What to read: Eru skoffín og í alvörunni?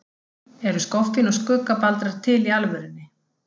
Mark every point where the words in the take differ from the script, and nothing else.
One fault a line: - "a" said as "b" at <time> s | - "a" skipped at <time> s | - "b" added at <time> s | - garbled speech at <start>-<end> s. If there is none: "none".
- "skuggabaldrar til" added at 1.4 s